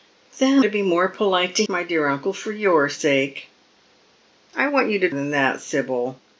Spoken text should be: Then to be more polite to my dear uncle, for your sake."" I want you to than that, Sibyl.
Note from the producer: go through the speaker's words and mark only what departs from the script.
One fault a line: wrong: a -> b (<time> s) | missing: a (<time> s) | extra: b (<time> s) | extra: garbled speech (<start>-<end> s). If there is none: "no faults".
no faults